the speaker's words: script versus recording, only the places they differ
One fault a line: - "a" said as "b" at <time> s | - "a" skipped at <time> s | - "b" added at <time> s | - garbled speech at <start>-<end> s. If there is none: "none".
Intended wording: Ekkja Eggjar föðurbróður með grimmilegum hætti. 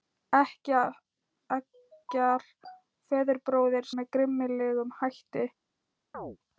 none